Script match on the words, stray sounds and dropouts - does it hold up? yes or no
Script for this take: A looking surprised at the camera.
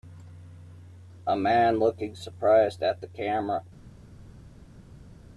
no